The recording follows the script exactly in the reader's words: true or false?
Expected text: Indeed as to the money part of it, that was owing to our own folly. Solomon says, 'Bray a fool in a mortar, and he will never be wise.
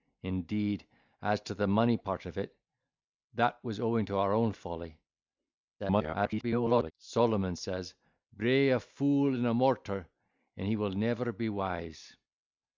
false